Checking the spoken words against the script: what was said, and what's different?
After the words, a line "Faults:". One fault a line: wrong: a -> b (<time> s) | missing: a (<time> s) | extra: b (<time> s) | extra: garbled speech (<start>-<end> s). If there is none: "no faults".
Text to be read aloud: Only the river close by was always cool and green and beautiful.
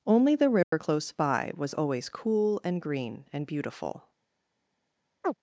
Only the river close by was always cool and green and beautiful.
Faults:
no faults